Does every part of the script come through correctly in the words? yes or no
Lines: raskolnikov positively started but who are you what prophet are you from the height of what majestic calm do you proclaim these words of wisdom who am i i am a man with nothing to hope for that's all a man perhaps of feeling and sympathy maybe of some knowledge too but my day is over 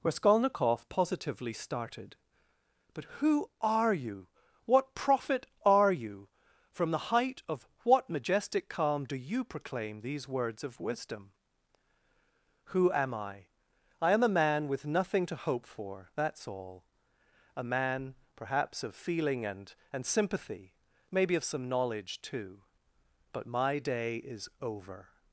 no